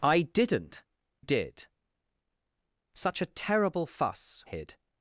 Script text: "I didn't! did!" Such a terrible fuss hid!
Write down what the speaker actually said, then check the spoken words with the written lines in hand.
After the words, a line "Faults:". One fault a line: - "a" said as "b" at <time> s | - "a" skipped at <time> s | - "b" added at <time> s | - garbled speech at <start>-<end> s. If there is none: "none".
"I didn't! did!" Such a terrible fuss hid!
Faults:
none